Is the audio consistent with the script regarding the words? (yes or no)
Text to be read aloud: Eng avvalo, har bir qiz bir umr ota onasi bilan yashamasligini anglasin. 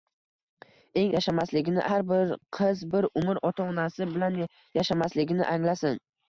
no